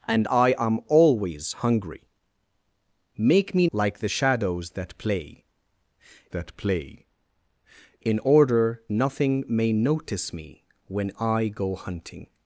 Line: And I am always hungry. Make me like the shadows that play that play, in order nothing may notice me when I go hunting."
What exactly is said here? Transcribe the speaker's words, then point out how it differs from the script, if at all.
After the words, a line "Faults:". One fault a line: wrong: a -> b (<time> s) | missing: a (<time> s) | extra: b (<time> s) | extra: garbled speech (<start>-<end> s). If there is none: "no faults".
And I am always hungry. Make me like the shadows that play that play, in order nothing may notice me when I go hunting."
Faults:
no faults